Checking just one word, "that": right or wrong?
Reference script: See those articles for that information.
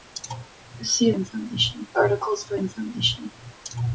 wrong